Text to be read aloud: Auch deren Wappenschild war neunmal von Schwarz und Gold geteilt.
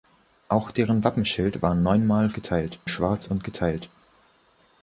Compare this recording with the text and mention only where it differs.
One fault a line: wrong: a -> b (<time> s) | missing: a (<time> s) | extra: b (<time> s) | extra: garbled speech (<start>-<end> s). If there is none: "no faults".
wrong: von -> geteilt (2.3 s)
missing: Gold (3.4 s)